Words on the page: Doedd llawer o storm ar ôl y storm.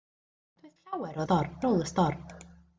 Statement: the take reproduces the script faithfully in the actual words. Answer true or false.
true